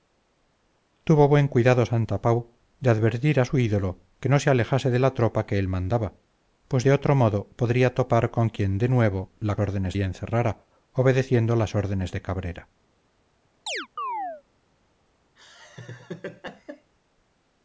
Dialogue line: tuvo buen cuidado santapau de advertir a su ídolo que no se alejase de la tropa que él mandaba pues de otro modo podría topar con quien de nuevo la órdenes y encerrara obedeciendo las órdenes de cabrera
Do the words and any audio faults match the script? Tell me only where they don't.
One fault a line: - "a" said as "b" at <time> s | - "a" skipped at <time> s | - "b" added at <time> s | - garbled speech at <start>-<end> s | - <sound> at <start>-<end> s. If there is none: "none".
- chirp at 13.7-14.4 s
- laugh at 15.4-16.9 s